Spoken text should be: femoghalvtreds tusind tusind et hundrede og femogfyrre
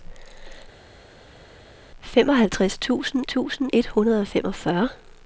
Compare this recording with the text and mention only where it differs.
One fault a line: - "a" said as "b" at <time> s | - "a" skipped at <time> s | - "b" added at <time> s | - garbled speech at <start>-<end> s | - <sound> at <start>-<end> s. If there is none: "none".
none